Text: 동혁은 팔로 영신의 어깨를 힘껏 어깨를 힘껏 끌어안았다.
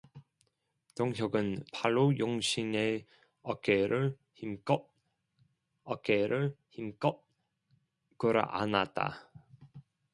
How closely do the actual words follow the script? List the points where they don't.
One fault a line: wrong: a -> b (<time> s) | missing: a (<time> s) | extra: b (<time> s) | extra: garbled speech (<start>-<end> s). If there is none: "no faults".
no faults